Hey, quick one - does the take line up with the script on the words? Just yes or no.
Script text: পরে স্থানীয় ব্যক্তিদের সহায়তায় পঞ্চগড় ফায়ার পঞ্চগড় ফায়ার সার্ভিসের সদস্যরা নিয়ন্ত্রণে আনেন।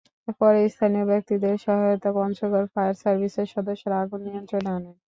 no